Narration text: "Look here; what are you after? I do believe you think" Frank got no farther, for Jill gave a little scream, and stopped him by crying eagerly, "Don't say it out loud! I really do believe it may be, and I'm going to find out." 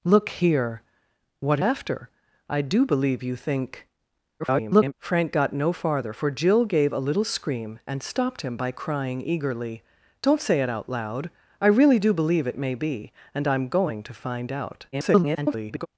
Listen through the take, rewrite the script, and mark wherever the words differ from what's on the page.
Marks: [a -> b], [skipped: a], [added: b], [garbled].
"Look here; what are [skipped: you] after? I do believe you think" [garbled] Frank got no farther, for Jill gave a little scream, and stopped him by crying eagerly, "Don't say it out loud! I really do believe it may be, and I'm going to find out." [garbled]